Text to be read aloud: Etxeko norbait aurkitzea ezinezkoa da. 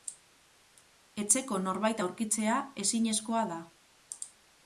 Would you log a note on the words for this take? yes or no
no